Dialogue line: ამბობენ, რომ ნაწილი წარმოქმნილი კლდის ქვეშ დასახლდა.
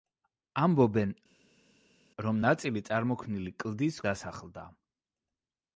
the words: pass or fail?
fail